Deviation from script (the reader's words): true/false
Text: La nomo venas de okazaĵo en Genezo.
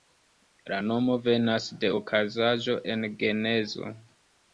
false